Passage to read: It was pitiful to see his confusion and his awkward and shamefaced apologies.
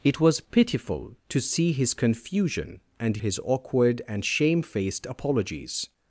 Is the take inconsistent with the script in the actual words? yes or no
no